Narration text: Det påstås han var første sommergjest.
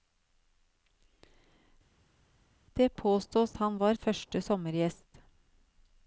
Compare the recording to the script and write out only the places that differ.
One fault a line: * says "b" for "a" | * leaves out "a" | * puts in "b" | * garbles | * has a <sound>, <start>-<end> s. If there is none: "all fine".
all fine